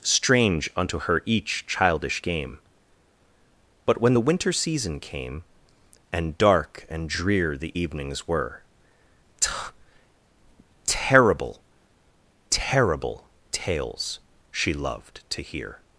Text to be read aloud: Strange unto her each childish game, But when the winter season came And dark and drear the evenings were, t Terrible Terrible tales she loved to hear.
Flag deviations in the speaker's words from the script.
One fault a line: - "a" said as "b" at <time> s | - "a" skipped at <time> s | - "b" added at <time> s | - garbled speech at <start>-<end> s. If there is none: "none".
none